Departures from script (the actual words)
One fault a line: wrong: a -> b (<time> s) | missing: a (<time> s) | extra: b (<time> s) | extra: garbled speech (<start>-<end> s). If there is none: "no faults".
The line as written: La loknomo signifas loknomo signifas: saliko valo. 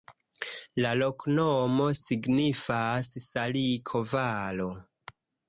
missing: loknomo signifas (3.1 s)